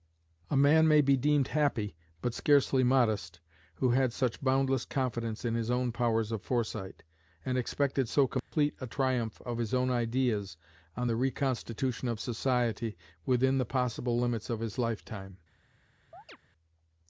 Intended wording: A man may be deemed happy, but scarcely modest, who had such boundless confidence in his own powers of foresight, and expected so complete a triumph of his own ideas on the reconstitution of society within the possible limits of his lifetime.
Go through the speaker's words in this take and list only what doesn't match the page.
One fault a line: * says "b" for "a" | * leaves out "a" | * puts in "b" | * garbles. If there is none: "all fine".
all fine